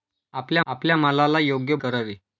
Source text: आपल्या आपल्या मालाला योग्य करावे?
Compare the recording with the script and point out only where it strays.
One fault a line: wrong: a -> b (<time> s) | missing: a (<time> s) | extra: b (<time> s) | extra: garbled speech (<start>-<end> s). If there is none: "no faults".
no faults